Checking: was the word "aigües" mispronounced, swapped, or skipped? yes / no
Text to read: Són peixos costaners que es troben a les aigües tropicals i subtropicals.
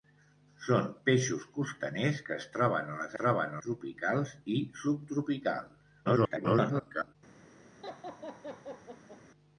yes